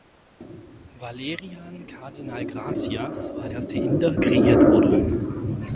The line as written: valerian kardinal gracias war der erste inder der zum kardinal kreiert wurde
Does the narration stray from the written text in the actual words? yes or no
yes